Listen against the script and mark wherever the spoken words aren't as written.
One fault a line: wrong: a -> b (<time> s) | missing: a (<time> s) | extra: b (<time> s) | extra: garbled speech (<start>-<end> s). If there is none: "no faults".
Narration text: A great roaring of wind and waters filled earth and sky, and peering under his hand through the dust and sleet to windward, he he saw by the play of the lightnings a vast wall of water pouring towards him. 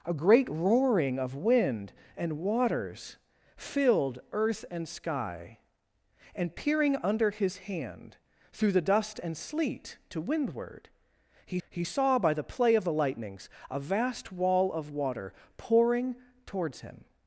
no faults